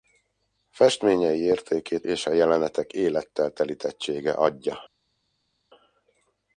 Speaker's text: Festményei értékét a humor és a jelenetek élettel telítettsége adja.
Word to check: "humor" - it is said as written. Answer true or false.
false